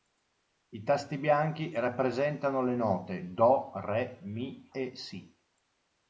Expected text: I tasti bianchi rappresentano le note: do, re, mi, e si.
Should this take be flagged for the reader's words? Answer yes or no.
no